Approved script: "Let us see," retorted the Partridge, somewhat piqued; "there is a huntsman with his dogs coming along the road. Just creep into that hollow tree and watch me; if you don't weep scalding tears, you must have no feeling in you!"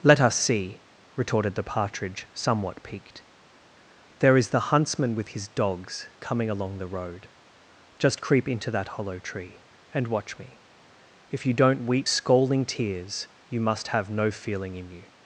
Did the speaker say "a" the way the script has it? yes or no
no